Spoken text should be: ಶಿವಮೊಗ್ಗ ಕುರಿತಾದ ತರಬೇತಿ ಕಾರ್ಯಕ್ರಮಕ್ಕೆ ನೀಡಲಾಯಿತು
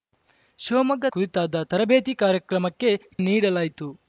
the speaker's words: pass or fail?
pass